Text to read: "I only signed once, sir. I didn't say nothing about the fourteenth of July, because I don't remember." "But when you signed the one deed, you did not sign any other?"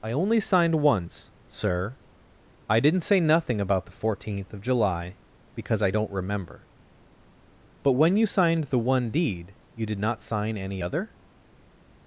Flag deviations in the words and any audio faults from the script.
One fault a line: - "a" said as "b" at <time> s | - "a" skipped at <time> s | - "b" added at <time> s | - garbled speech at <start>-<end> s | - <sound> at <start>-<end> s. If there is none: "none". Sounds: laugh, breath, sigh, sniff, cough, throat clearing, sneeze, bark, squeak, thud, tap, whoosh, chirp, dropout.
none